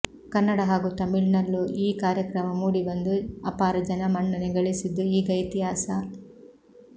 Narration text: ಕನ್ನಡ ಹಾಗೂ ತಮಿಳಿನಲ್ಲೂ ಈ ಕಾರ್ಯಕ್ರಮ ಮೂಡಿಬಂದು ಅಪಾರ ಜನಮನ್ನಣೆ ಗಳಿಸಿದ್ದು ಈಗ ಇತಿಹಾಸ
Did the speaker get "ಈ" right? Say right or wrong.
right